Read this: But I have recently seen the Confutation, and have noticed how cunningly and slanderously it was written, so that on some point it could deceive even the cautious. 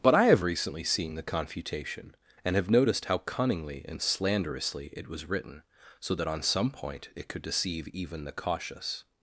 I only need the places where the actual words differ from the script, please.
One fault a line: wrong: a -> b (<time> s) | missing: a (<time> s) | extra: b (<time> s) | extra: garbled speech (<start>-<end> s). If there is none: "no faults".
no faults